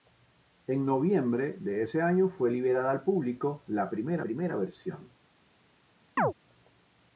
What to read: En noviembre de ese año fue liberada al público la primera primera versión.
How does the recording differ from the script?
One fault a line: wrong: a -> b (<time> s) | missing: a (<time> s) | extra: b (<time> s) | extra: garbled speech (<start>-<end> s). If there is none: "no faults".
no faults